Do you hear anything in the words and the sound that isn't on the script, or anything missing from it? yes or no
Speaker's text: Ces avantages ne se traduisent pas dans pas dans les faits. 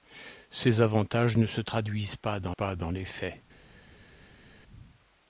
no